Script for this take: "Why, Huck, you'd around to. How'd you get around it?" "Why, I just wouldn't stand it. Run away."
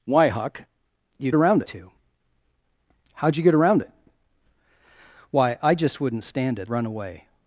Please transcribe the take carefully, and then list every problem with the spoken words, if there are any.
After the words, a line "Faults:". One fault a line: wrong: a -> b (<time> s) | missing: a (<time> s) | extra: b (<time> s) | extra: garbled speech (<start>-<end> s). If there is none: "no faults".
"Why, Huck, you'd around to. How'd you get around it?" "Why, I just wouldn't stand it. Run away."
Faults:
no faults